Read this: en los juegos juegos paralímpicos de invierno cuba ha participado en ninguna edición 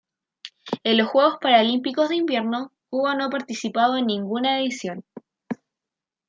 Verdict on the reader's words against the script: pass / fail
fail